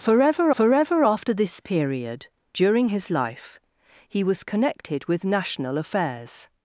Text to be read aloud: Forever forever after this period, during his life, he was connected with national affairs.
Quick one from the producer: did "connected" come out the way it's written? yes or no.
yes